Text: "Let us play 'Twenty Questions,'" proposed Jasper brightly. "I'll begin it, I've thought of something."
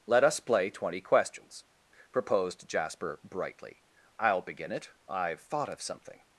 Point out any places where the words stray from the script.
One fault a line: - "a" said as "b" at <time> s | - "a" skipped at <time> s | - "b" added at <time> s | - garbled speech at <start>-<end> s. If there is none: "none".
none